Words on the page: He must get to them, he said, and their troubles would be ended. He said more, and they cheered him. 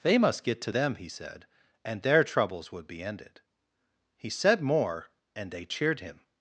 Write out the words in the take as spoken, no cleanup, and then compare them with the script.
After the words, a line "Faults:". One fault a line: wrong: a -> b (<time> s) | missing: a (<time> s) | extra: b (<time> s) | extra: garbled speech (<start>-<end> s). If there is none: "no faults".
They must get to them, he said, and their troubles would be ended. He said more, and they cheered him.
Faults:
wrong: He -> They (0.0 s)